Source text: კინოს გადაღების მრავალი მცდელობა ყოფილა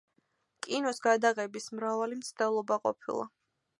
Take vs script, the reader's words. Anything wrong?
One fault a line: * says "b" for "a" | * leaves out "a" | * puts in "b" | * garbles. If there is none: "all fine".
all fine